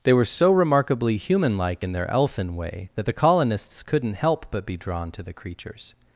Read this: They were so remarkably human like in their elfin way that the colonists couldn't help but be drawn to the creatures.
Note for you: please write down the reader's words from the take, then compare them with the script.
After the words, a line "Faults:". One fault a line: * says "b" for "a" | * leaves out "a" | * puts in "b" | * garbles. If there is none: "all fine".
They were so remarkably human like in their elfin way that the colonists couldn't help but be drawn to the creatures.
Faults:
all fine